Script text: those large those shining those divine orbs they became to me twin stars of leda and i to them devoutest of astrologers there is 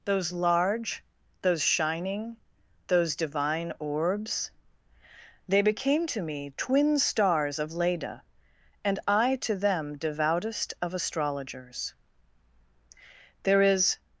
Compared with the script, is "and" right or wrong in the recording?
right